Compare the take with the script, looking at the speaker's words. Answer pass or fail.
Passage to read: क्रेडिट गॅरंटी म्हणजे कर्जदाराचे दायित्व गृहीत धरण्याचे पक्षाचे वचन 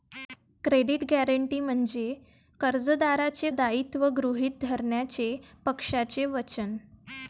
pass